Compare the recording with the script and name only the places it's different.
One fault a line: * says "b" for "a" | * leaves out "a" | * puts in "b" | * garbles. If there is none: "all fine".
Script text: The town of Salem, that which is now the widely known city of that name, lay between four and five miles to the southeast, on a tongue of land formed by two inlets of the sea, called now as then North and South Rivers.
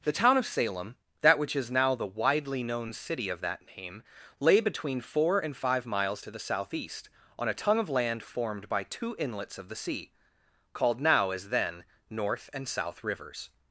all fine